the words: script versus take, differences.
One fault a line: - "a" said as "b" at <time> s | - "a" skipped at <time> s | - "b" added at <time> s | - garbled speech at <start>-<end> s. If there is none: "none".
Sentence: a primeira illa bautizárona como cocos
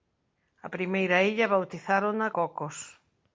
- "como" skipped at 2.3 s